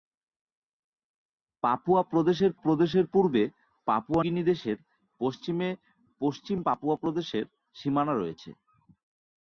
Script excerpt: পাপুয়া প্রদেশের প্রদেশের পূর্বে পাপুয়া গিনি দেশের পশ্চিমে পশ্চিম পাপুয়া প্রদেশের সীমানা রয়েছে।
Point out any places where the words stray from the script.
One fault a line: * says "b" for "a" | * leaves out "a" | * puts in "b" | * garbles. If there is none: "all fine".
all fine